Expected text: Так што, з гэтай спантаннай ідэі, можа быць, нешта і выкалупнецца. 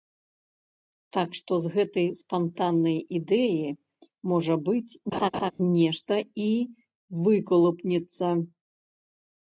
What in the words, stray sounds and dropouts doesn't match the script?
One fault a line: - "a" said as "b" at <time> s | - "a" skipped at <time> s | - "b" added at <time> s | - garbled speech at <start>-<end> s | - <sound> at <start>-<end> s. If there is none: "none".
- laugh at 5.1-5.5 s